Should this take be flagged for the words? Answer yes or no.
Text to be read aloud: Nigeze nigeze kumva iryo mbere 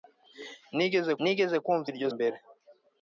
no